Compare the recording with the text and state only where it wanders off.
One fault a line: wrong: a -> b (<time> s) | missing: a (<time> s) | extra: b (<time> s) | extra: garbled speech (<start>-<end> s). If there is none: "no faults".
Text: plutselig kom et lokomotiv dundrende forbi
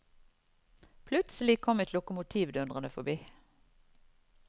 no faults